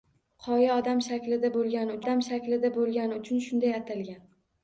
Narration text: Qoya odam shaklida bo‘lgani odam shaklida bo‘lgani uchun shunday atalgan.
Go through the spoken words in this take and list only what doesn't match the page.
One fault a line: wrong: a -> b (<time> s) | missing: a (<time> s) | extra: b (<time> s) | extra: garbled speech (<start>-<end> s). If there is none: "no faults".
no faults